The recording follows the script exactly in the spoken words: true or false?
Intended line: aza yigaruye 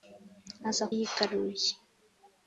true